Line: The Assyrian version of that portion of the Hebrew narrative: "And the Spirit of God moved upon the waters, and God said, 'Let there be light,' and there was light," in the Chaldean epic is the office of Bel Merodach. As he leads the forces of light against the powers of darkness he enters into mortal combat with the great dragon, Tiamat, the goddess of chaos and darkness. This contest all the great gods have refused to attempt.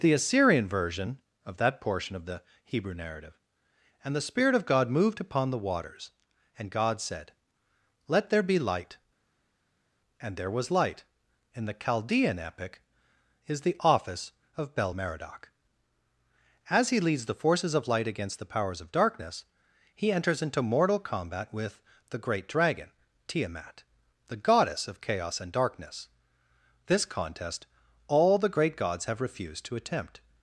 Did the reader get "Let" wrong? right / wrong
right